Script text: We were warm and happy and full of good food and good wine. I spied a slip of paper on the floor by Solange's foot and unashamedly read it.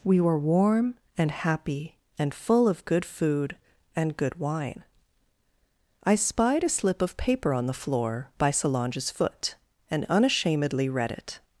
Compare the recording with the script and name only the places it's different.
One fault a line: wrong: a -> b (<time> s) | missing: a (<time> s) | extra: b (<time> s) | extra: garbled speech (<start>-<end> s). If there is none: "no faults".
no faults